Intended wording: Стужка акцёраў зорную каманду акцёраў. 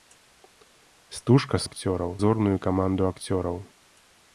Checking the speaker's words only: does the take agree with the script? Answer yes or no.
yes